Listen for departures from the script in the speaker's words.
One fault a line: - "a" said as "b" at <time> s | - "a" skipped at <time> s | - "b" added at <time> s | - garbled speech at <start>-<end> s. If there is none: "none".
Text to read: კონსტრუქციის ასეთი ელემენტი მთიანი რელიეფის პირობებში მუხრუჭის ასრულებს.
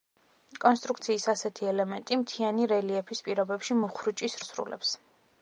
none